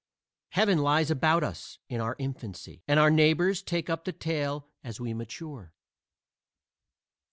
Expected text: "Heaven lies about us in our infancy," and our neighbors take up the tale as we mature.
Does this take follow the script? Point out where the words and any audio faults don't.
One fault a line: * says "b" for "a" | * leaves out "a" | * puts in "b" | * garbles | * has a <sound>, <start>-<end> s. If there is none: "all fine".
all fine